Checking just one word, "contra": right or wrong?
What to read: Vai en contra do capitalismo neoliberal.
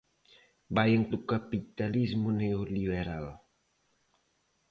wrong